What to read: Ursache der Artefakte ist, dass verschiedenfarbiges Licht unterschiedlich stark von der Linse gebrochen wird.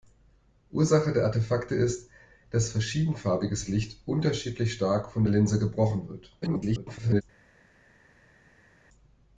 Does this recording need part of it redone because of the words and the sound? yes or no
yes